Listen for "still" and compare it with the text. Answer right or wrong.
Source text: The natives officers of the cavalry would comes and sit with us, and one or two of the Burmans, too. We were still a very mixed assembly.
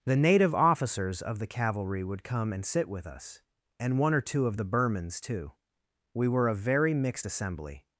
wrong